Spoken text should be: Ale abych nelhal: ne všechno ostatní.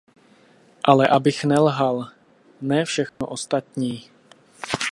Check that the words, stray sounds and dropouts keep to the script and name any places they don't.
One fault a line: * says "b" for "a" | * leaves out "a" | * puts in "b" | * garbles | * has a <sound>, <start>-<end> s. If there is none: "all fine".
* has a dropout, 3.1-3.2 s